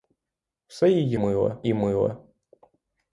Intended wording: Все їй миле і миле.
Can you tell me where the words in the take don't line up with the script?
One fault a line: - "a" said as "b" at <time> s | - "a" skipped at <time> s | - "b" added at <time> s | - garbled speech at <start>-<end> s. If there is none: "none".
none